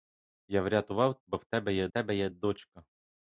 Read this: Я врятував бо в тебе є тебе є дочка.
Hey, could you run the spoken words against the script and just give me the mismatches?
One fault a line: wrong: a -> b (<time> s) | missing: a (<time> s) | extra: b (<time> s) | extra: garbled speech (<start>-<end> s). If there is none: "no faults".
no faults